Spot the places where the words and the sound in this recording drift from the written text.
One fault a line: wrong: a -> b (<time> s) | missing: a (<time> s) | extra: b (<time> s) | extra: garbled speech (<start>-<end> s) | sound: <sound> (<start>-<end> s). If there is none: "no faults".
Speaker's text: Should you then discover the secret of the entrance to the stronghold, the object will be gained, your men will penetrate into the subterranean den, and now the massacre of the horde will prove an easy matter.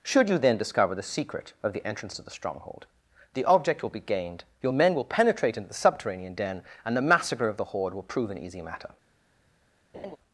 missing: now (7.0 s)
sound: laugh (9.9-10.2 s)